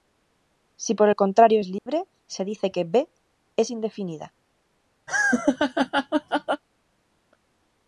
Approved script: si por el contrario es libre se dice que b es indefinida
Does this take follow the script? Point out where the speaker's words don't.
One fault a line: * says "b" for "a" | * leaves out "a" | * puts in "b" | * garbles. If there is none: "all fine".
all fine